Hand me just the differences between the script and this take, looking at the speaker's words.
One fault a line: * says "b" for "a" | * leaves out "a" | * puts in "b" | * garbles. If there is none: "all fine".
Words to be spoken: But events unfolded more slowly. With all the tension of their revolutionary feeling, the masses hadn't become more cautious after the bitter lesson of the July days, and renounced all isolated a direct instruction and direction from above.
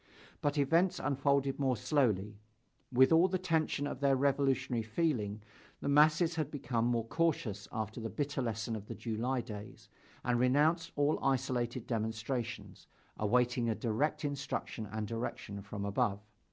* says "had" for "hadn't"
* puts in "demonstrations awaiting"